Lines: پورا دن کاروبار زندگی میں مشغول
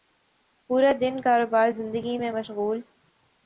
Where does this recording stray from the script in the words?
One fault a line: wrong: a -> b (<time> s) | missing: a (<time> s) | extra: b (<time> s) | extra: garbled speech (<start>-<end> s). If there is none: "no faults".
no faults